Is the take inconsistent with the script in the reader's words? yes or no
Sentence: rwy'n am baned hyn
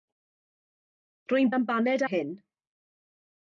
no